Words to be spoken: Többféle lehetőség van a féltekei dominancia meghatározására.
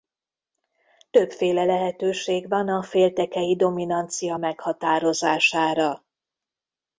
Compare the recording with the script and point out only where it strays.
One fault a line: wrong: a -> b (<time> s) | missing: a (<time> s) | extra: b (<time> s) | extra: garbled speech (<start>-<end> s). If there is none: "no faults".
no faults